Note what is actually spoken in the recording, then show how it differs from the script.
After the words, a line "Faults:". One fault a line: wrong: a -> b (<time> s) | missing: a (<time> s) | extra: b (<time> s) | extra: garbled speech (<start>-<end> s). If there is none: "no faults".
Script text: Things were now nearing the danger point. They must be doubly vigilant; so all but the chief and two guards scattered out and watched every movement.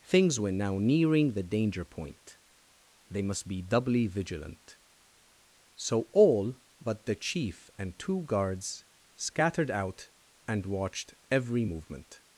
Things were now nearing the danger point. They must be doubly vigilant; so all but the chief and two guards scattered out and watched every movement.
Faults:
no faults